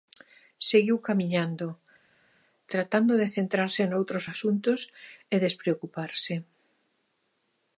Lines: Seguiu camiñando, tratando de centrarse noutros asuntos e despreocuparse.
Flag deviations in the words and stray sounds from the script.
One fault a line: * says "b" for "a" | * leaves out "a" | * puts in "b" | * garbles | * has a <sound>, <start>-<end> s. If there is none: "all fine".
all fine